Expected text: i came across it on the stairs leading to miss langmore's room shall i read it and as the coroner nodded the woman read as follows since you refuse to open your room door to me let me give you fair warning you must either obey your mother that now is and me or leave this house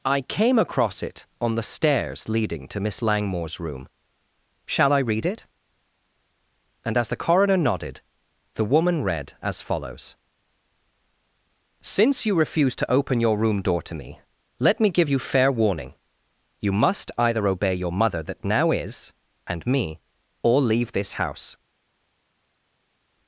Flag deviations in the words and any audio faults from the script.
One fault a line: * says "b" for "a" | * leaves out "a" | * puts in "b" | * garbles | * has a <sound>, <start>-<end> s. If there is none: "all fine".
all fine